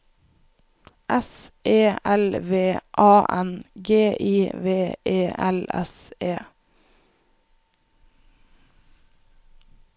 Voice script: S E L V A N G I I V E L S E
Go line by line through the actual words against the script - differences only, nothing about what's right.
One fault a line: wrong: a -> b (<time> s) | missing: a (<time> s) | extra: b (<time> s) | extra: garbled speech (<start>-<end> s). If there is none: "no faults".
missing: I (4.5 s)